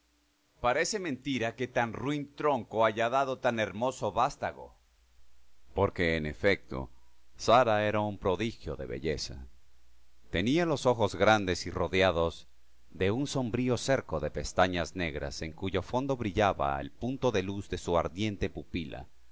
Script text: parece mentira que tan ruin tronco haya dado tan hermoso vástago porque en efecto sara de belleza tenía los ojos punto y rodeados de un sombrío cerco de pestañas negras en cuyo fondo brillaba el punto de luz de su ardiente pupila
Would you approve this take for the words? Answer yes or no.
no